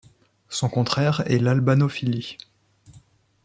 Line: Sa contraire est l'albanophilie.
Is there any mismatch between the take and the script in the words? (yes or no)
yes